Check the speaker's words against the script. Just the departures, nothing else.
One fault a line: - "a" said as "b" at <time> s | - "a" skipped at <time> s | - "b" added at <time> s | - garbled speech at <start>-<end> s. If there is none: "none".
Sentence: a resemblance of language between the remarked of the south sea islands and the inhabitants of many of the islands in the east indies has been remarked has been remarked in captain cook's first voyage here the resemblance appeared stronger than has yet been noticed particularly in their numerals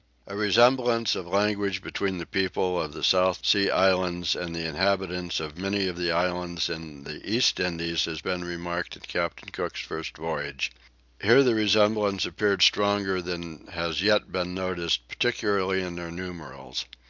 - "remarked" said as "people" at 2.2 s
- "has been remarked" skipped at 8.9 s